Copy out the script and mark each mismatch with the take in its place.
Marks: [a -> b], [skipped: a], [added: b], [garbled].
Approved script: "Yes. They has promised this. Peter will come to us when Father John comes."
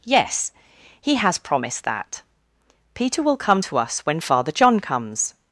"Yes. [They -> He] has promised [this. -> that] Peter will come to us when Father John comes."